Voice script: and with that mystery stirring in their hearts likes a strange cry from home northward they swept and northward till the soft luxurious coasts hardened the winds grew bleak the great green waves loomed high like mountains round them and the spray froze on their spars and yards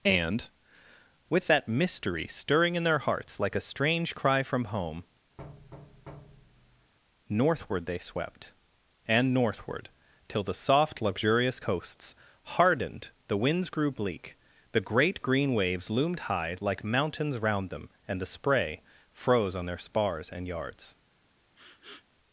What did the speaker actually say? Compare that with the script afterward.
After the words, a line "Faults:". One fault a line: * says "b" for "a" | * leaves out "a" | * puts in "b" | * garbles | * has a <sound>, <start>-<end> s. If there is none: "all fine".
and with that mystery stirring in their hearts like a strange cry from home northward they swept and northward till the soft luxurious coasts hardened the winds grew bleak the great green waves loomed high like mountains round them and the spray froze on their spars and yards
Faults:
* says "like" for "likes"
* has a thud, 5.4-6.9 s
* has a sniff, 21.6-22.1 s